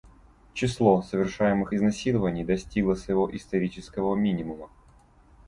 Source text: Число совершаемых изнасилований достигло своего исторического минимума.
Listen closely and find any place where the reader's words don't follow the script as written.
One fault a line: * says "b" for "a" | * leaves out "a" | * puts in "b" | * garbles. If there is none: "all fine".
all fine